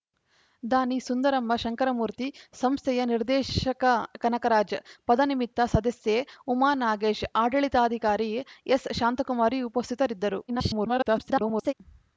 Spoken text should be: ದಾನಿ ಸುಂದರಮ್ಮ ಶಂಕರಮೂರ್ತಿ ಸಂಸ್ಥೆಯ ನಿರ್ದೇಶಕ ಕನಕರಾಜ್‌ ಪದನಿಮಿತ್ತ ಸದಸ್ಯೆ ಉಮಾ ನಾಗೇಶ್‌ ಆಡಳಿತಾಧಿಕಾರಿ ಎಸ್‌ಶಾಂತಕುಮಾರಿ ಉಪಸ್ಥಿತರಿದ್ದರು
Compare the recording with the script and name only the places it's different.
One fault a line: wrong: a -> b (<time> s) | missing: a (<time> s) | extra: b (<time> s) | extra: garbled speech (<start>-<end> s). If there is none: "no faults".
extra: garbled speech (10.5-11.7 s)